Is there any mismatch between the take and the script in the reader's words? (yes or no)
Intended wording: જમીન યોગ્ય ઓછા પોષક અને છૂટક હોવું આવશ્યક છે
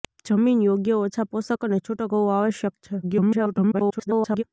yes